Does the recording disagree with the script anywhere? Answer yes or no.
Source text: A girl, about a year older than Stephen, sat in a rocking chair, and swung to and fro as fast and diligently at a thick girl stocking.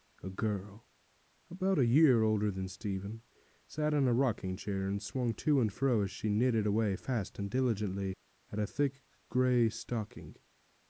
yes